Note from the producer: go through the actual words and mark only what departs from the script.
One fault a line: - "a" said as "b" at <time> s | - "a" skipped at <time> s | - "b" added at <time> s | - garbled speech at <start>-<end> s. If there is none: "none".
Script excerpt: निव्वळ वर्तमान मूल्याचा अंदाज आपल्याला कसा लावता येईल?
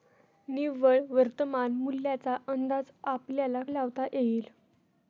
- "कसा" skipped at 3.6 s